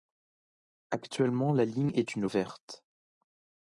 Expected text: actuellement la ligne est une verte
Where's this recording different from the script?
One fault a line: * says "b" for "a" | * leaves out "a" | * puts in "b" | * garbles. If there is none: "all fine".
all fine